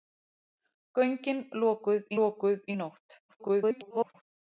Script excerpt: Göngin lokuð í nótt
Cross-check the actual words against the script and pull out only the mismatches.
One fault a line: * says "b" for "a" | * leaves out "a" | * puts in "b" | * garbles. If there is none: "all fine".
* puts in "lokuð"
* garbles